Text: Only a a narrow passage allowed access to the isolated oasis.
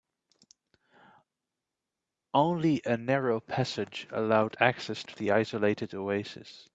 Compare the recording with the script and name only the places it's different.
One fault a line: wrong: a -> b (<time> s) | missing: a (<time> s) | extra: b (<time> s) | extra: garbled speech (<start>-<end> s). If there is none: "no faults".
missing: a (3.0 s)